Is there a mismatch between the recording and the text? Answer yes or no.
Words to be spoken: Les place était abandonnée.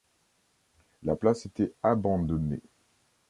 yes